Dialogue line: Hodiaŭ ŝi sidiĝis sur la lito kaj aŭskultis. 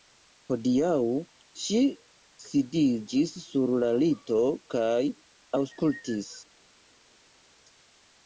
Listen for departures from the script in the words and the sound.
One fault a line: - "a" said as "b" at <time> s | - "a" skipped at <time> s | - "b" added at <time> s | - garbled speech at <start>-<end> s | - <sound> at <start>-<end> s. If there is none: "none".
none